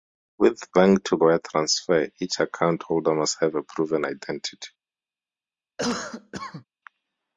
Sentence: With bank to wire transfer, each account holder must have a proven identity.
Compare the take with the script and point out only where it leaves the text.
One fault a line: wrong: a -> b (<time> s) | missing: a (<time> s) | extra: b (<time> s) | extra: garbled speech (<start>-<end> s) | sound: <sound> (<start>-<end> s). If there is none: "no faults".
sound: cough (5.8-6.6 s)